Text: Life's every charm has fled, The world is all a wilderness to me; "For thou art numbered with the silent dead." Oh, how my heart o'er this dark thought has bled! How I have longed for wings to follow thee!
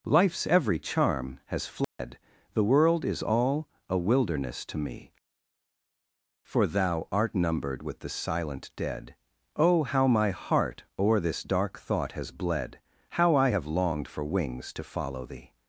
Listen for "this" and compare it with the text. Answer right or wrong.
right